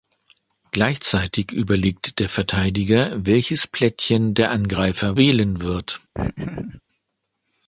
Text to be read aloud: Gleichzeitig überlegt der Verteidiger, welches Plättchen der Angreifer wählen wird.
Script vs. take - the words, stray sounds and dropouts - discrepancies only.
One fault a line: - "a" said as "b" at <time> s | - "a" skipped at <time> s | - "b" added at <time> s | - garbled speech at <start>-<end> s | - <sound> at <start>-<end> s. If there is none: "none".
- laugh at 6.1-6.8 s